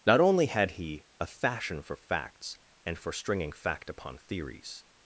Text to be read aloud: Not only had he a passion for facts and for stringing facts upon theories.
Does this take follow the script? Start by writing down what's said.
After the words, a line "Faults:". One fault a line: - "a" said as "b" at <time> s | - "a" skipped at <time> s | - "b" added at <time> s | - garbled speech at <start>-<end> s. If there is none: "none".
Not only had he a fashion for facts and for stringing fact upon theories.
Faults:
- "passion" said as "fashion" at 1.3 s
- "facts" said as "fact" at 3.5 s